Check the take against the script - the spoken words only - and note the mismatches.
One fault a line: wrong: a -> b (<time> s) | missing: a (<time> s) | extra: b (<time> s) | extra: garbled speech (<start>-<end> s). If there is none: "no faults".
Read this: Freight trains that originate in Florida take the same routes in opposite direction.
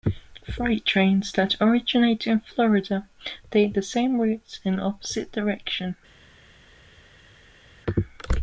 no faults